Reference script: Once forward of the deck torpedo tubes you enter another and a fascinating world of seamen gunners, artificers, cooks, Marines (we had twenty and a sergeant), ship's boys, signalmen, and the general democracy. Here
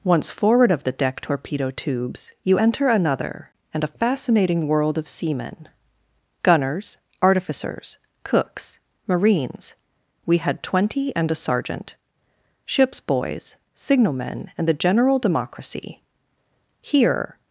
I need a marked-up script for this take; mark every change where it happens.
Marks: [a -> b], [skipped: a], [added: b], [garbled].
Once forward of the deck torpedo tubes you enter another and a fascinating world of seamen gunners, artificers, cooks, Marines (we had twenty and a sergeant), ship's boys, signalmen, and the general democracy. Here